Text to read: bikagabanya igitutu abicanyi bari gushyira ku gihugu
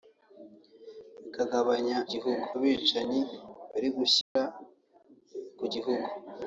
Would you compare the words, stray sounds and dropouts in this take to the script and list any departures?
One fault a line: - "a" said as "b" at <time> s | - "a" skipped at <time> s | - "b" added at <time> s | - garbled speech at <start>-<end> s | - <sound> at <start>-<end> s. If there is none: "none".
- "igitutu" said as "gihugu" at 2.1 s
- dropout at 4.2-4.4 s